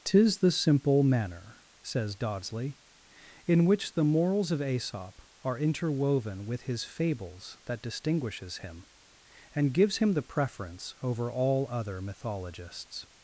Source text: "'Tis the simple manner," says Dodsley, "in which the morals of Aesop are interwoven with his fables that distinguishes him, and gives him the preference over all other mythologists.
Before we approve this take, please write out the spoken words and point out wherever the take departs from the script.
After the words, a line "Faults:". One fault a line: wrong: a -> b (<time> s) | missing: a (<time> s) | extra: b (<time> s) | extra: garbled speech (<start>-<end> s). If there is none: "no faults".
"'Tis the simple manner," says Dodsley, "in which the morals of Aesop are interwoven with his fables that distinguishes him, and gives him the preference over all other mythologists.
Faults:
no faults